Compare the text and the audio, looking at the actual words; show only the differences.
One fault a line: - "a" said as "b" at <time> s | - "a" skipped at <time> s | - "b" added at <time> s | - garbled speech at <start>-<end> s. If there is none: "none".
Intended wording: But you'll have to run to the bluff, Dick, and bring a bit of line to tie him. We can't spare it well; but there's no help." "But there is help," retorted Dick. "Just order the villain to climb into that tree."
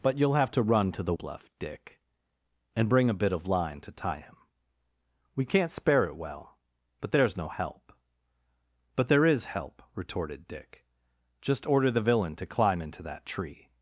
none